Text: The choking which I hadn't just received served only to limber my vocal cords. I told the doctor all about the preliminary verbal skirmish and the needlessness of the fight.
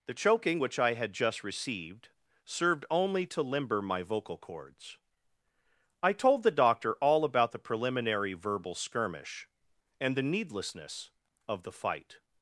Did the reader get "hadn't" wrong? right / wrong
wrong